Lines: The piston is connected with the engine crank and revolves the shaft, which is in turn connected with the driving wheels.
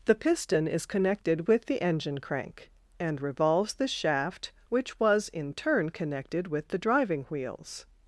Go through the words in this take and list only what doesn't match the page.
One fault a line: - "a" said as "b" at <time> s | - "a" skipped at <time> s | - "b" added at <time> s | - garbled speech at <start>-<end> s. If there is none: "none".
- "is" said as "was" at 5.0 s